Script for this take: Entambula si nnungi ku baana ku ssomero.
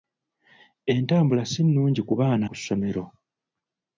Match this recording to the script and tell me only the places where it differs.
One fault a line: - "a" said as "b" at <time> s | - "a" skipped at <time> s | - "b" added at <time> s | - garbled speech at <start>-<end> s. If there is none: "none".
none